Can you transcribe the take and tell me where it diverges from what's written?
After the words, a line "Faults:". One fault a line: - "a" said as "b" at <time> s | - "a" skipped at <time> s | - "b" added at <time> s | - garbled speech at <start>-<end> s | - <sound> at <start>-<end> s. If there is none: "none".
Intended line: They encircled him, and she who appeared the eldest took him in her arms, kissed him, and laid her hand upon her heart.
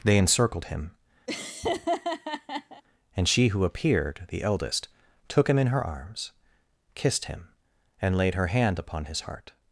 They encircled him, and she who appeared the eldest took him in her arms, kissed him, and laid her hand upon his heart.
Faults:
- laugh at 1.3-2.8 s
- "her" said as "his" at 9.1 s